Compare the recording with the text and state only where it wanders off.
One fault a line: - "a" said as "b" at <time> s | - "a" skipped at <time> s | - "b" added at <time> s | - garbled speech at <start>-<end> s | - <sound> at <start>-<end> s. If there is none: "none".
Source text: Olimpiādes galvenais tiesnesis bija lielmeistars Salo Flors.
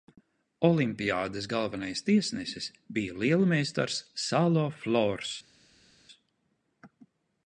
none